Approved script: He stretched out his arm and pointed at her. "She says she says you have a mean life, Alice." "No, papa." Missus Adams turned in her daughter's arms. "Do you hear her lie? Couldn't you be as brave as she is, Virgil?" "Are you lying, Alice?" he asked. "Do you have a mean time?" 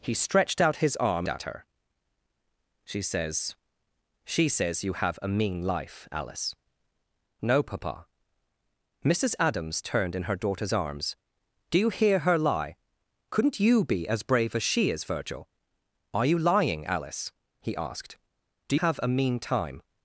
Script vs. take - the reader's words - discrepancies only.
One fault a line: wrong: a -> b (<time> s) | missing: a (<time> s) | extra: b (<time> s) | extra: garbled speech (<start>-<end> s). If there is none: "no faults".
missing: and pointed (1.3 s)
missing: you (18.8 s)